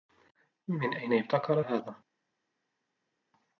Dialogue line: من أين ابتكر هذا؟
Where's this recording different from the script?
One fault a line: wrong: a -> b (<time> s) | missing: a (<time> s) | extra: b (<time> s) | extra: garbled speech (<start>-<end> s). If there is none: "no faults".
no faults